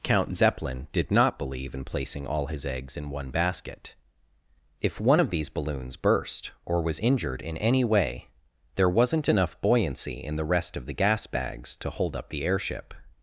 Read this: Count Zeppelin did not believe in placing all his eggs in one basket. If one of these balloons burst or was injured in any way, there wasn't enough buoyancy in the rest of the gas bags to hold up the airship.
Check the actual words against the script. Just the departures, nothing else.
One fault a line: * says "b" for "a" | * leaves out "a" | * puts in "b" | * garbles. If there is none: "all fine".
all fine